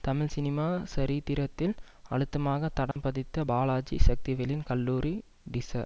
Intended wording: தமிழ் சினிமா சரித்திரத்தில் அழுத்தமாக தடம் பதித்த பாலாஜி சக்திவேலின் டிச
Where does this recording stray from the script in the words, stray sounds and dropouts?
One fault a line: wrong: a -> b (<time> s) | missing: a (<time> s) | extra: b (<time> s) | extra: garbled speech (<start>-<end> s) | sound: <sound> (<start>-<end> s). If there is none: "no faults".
sound: dropout (2.9-3.0 s)
extra: கல்லூரி (4.7 s)